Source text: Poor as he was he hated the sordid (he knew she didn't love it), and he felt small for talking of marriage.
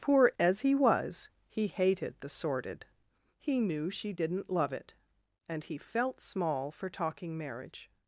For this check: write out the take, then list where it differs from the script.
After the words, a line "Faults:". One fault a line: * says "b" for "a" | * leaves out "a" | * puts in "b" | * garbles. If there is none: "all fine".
Poor as he was he hated the sordid (he knew she didn't love it), and he felt small for talking marriage.
Faults:
* leaves out "of"